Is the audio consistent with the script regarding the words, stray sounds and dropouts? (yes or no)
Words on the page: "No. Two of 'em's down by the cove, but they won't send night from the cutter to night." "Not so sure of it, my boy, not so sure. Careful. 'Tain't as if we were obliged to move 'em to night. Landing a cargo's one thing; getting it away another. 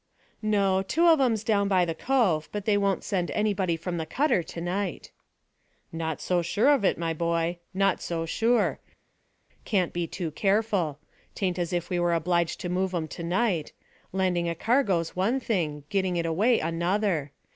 no